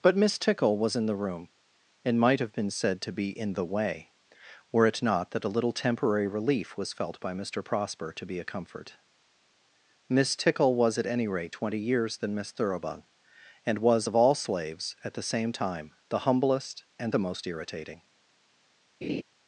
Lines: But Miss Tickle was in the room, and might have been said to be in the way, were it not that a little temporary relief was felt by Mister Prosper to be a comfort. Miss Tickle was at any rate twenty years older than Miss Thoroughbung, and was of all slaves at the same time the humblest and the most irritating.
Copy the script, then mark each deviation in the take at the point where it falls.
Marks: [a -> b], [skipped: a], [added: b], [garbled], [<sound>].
But Miss Tickle was in the room, and might have been said to be in the way, were it not that a little temporary relief was felt by Mister Prosper to be a comfort. Miss Tickle was at any rate twenty years [skipped: older] than Miss Thoroughbung, and was of all slaves at the same time the humblest and the most irritating. [laugh]